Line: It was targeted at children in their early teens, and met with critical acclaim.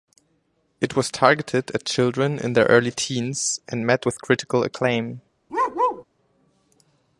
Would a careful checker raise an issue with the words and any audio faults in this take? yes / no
yes